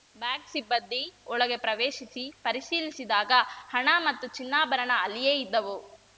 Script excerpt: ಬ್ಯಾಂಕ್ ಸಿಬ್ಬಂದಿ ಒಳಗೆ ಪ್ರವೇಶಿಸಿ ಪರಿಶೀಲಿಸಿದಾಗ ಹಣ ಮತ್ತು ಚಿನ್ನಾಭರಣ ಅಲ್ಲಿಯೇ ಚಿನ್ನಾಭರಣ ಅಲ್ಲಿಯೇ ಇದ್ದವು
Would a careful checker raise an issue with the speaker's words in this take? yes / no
yes